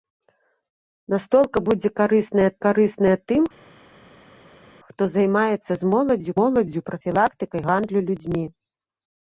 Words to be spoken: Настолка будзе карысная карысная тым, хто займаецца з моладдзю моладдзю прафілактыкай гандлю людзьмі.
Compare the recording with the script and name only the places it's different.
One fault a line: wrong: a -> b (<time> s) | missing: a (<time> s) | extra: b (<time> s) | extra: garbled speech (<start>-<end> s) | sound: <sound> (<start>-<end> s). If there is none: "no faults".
no faults